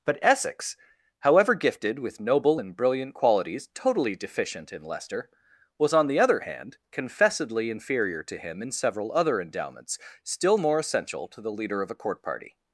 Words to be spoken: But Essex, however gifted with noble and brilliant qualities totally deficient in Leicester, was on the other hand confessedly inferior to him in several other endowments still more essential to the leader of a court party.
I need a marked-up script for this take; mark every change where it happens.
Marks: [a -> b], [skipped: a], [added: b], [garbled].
But Essex, however gifted with noble and brilliant qualities totally deficient in Leicester, was on the other hand confessedly inferior to him in several other endowments still more essential to the leader of a court party.